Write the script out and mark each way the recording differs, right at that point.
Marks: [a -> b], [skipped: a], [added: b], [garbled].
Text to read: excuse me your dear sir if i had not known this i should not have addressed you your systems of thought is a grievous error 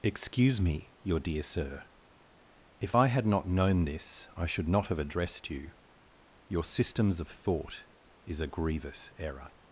excuse me your dear sir if i had not known this i should not have addressed you your systems of thought is a grievous error